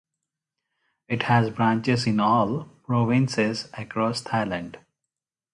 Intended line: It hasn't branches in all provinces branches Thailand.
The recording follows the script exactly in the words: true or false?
false